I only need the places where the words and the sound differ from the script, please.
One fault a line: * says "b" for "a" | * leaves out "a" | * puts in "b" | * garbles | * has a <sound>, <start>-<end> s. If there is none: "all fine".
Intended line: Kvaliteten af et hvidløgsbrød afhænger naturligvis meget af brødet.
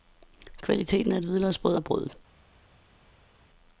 * leaves out "afhænger naturligvis meget"